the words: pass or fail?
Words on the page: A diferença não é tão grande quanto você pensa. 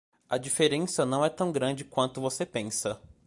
pass